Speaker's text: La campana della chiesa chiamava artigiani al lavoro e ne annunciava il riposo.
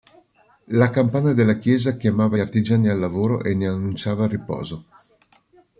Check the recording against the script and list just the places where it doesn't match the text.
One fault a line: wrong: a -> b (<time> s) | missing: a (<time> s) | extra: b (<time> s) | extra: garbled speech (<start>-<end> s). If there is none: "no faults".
no faults